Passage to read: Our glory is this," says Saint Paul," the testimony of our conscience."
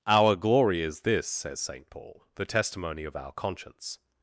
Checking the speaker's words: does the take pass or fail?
pass